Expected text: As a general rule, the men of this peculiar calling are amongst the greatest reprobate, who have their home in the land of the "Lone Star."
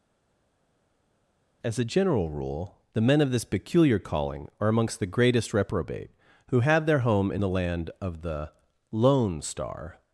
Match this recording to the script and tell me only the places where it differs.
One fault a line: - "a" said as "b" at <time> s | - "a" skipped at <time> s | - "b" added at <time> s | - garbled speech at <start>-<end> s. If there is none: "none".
none